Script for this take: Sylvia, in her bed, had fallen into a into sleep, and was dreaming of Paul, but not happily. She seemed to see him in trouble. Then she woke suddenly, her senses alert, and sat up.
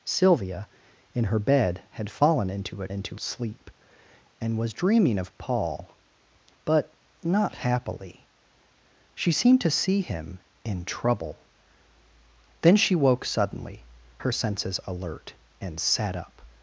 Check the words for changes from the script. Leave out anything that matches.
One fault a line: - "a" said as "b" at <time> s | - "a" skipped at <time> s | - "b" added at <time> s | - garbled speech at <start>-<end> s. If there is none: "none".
none